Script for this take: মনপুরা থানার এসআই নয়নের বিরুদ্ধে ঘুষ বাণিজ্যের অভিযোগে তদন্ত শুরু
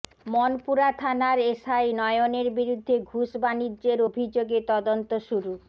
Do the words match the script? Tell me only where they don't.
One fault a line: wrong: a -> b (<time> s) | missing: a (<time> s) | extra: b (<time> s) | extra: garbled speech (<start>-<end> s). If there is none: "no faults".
no faults